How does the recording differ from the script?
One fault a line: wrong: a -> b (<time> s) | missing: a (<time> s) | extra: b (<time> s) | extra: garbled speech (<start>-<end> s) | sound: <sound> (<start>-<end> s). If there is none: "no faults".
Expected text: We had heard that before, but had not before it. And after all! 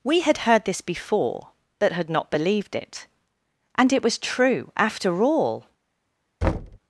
wrong: that -> this (0.7 s)
wrong: before -> believed (2.3 s)
extra: it was true (3.9 s)
sound: thud (6.4-6.8 s)